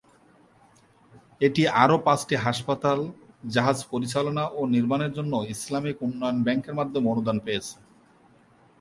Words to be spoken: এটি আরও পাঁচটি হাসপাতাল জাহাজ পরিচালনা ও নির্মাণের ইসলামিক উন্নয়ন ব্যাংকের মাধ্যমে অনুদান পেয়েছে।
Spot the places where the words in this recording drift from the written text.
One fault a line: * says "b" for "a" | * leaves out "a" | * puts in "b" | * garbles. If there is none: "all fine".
* puts in "জন্য"